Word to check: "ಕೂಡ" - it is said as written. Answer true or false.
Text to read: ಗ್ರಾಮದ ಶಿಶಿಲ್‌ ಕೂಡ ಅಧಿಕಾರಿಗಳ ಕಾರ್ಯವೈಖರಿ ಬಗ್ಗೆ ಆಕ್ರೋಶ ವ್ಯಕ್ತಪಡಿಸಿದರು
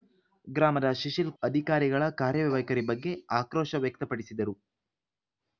false